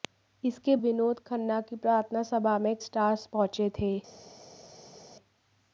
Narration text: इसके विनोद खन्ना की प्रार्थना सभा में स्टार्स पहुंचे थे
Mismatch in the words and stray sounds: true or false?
false